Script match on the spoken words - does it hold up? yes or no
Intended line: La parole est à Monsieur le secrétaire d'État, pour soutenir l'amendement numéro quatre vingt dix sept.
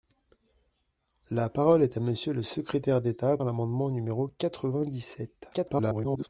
no